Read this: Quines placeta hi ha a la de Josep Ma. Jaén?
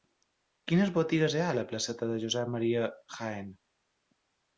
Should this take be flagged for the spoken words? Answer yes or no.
yes